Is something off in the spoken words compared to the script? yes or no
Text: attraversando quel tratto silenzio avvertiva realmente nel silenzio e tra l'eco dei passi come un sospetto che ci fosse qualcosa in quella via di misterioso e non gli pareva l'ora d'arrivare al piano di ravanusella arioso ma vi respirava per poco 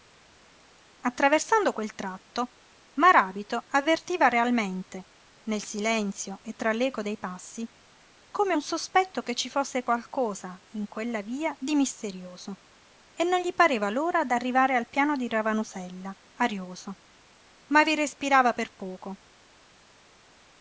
yes